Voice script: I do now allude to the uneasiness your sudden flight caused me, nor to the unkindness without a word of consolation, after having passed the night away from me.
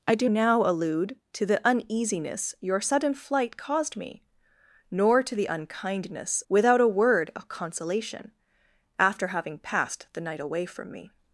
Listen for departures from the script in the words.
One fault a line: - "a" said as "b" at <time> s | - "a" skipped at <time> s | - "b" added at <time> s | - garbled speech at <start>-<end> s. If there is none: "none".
none